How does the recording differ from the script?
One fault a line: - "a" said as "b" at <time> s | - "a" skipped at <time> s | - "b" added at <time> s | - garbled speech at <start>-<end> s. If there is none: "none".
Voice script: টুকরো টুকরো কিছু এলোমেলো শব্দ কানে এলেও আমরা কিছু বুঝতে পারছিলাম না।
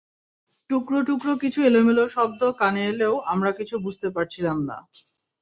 none